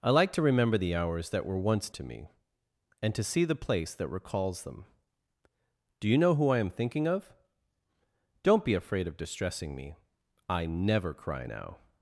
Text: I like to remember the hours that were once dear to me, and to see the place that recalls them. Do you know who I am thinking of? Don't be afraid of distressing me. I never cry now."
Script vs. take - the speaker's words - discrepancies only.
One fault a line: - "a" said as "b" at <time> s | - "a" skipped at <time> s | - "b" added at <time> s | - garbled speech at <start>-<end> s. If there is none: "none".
- "dear" skipped at 1.9 s